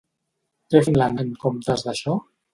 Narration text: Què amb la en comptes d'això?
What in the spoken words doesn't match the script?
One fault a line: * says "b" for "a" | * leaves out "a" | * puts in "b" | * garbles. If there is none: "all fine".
all fine